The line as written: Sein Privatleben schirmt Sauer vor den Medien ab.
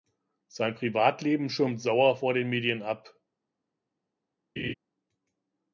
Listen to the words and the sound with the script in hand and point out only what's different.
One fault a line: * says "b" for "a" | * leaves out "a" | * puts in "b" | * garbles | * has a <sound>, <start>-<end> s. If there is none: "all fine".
* has a laugh, 4.6-4.7 s